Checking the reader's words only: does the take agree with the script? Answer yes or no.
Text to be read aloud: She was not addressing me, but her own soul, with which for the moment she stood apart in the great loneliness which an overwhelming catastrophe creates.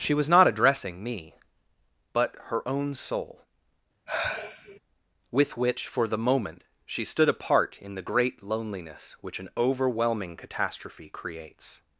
yes